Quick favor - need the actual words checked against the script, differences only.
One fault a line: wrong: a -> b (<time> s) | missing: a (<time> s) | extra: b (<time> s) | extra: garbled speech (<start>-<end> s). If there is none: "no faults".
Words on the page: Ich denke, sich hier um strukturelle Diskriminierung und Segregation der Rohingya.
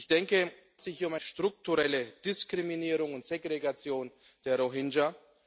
no faults